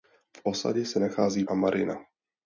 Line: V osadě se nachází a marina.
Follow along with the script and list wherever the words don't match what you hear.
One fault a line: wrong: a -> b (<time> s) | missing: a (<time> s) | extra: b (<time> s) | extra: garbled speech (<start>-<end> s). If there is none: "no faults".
no faults